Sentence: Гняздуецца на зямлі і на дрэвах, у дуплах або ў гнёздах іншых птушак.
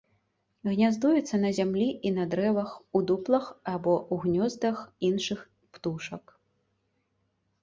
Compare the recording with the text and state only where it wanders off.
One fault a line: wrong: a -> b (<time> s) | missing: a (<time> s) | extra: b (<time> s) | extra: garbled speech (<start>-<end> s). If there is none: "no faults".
no faults